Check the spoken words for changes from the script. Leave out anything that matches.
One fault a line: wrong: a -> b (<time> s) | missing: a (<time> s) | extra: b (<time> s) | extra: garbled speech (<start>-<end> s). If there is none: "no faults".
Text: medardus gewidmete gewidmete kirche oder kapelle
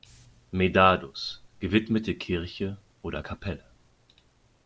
missing: gewidmete (2.1 s)